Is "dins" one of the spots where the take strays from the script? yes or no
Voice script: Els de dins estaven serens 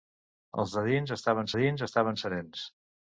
no